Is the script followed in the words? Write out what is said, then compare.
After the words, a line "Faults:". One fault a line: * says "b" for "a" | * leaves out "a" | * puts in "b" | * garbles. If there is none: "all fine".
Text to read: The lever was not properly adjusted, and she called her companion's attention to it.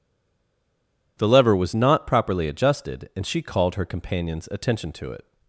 The lever was not properly adjusted, and she called her companion's attention to it.
Faults:
all fine